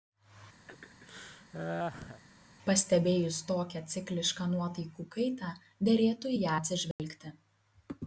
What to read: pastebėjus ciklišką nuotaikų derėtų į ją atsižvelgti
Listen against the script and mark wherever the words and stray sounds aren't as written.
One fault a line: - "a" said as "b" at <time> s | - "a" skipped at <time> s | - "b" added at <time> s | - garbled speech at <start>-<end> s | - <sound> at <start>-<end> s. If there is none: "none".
- laugh at 0.7-2.2 s
- "tokią" added at 3.5 s
- "kaitą" added at 5.2 s
- dropout at 6.9-7.0 s